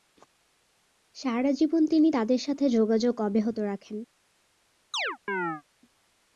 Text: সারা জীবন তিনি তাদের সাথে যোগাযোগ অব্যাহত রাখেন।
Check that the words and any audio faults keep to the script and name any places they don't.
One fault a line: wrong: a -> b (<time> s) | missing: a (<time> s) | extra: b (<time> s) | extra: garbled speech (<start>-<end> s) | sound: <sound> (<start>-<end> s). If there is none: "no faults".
sound: chirp (4.9-5.6 s)